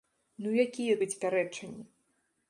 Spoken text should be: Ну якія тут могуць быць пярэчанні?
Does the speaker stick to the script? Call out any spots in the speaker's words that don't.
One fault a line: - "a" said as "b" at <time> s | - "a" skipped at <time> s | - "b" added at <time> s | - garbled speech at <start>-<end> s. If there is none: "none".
- "тут могуць" skipped at 0.9 s